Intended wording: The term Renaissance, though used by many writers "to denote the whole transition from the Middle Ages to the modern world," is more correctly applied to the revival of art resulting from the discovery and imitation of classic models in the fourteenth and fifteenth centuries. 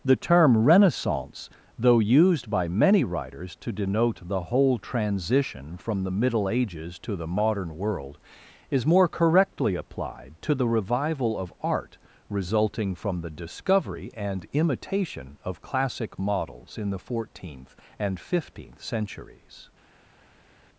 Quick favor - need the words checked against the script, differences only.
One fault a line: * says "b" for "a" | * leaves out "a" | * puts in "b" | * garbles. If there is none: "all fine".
all fine